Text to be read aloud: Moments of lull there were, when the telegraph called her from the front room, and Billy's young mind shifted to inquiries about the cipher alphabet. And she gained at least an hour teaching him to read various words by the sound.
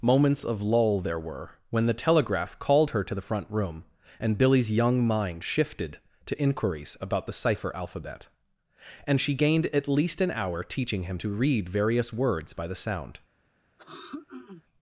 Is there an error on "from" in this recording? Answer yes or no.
yes